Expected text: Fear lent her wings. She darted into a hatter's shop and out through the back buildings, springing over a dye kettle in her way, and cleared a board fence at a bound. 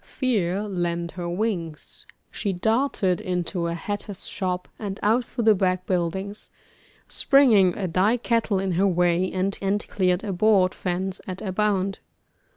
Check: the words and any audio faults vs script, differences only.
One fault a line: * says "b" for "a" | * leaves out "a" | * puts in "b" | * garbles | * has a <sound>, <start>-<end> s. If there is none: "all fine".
* leaves out "over"
* puts in "and"